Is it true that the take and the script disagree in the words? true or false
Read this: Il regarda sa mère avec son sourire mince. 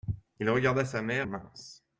true